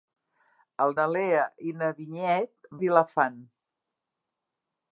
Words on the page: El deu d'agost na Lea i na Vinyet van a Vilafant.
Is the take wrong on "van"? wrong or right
wrong